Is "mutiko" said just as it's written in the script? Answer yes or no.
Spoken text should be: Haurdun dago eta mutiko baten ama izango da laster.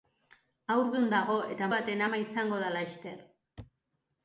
no